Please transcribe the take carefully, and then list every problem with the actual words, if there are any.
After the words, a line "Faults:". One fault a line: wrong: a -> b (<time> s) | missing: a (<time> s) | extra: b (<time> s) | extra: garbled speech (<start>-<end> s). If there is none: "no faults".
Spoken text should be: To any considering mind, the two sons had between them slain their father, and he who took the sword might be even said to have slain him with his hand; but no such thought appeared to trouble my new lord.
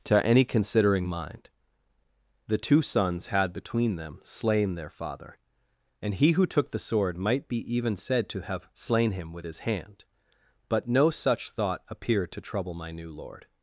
To any considering mind, the two sons had between them slain their father, and he who took the sword might be even said to have slain him with his hand; but no such thought appeared to trouble my new lord.
Faults:
no faults